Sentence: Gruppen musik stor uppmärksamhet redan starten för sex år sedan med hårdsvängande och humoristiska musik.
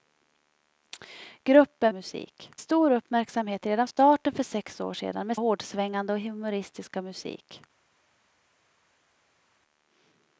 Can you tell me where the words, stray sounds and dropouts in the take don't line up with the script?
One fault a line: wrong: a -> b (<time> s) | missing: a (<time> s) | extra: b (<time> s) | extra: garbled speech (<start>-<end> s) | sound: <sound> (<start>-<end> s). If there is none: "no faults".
no faults